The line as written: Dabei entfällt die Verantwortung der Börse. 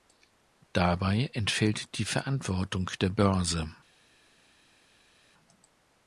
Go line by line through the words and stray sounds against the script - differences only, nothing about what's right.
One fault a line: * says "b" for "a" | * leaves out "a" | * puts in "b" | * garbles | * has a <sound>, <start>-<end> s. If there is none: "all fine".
all fine